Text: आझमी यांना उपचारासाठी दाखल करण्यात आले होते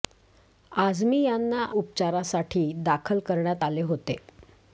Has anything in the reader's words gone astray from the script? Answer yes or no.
no